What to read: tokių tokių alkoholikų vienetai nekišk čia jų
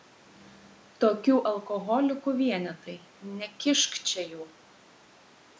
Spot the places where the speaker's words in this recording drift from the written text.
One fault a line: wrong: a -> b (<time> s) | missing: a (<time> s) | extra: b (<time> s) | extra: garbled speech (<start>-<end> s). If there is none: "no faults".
missing: tokių (1.4 s)